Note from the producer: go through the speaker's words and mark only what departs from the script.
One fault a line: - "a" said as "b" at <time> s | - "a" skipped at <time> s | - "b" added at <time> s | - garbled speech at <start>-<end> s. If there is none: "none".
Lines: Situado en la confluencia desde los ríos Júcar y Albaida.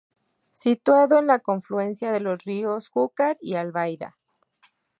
- "desde" said as "de" at 2.1 s